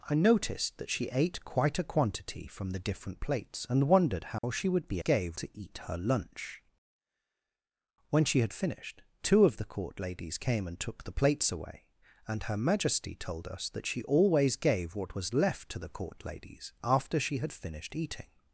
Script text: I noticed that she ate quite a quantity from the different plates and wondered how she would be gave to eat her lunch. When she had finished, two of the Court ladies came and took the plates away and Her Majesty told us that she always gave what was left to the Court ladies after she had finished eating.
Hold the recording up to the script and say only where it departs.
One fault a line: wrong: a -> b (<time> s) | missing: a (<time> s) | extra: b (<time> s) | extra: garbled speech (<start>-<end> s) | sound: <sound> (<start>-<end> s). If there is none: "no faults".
sound: dropout (4.4-4.4 s)